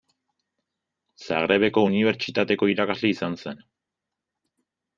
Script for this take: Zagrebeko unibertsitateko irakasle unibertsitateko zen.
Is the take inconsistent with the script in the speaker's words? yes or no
yes